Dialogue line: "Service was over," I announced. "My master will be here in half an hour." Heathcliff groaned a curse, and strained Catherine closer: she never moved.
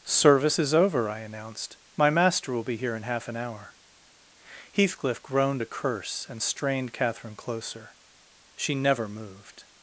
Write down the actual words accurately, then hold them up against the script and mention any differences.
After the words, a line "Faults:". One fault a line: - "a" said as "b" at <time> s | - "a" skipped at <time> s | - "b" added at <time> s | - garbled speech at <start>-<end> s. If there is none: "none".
"Service is over," I announced. "My master will be here in half an hour." Heathcliff groaned a curse, and strained Catherine closer: she never moved.
Faults:
- "was" said as "is" at 0.6 s